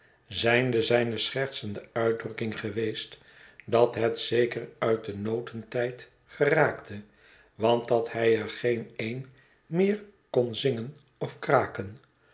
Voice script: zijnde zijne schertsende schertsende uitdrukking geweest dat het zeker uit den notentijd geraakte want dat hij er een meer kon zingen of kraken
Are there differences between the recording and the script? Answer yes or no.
yes